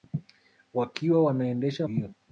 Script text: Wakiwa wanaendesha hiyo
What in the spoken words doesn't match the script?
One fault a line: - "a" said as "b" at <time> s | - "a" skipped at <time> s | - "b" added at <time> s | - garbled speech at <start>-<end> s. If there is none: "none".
none